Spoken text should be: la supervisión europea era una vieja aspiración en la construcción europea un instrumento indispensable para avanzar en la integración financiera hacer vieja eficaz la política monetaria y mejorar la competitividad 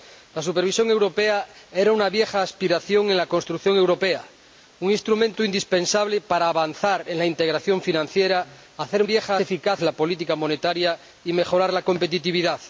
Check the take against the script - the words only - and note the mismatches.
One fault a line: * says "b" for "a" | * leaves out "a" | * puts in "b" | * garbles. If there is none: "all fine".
all fine